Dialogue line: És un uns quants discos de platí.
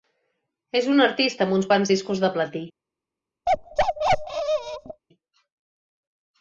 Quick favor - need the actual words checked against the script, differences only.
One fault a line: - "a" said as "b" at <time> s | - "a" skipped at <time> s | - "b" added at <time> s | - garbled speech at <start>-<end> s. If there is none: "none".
- "artista amb" added at 1.1 s